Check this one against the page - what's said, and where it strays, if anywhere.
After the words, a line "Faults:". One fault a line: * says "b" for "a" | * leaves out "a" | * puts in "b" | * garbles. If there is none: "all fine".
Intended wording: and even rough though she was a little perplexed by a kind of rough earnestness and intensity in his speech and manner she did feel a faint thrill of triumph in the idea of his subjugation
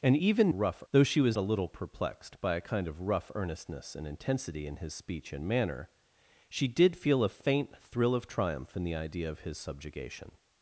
and even rough though she was a little perplexed by a kind of rough earnestness and intensity in his speech and manner she did feel a faint thrill of triumph in the idea of his subjugation
Faults:
all fine